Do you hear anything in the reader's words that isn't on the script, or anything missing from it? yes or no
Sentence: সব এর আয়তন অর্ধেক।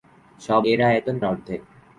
no